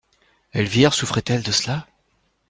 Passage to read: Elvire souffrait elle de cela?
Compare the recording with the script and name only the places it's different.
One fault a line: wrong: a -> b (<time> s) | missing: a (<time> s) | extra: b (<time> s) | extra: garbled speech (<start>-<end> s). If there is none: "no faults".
no faults